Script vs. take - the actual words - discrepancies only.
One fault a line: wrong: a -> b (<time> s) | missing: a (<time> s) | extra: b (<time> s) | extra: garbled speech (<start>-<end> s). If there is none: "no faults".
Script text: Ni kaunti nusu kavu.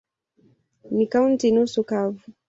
no faults